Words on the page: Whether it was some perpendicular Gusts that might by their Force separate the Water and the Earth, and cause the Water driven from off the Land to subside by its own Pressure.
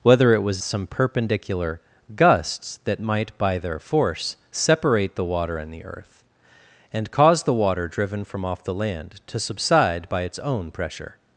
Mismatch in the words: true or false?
false